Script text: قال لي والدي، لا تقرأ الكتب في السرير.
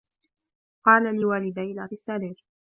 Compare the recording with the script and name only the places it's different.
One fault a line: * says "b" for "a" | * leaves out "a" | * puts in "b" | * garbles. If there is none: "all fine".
* leaves out "تقرأ الكتب في"